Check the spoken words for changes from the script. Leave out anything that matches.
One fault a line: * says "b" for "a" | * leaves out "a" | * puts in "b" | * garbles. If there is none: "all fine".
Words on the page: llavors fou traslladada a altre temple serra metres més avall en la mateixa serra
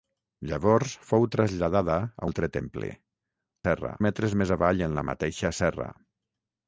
all fine